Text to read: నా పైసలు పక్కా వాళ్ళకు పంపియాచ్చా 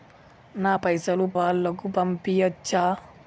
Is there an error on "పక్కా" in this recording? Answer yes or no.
yes